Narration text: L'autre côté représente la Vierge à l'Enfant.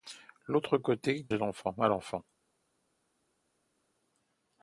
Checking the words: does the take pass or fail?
fail